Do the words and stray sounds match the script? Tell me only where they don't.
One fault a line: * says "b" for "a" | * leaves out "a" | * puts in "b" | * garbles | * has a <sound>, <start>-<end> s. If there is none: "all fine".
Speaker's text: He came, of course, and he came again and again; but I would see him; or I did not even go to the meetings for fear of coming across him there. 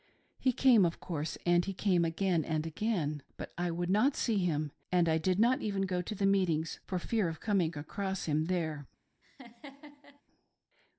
* puts in "not"
* says "and" for "or"
* has a laugh, 9.2-10.2 s